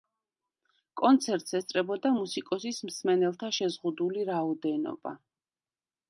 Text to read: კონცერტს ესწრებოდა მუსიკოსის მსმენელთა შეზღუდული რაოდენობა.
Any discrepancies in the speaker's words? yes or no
no